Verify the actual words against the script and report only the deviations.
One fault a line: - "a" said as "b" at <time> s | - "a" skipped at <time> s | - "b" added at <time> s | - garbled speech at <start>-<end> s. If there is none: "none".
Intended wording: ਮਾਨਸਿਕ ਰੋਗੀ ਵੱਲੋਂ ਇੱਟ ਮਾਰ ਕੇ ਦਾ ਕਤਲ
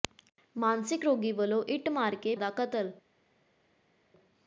none